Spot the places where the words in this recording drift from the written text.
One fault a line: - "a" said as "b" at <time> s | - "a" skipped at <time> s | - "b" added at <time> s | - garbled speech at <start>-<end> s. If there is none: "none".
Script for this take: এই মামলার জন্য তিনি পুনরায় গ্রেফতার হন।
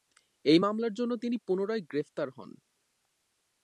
none